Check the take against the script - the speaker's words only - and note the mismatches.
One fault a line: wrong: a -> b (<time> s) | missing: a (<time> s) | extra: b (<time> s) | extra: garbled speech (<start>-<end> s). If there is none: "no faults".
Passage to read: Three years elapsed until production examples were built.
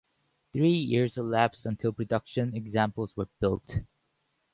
no faults